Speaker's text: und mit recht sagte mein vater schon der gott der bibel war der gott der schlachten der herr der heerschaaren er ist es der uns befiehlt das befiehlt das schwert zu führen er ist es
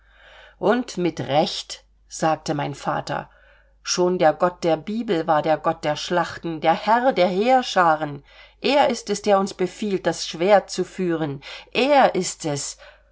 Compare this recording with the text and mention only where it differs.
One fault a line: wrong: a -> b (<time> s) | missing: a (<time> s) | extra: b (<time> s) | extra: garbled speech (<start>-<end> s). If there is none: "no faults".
missing: befiehlt das (10.2 s)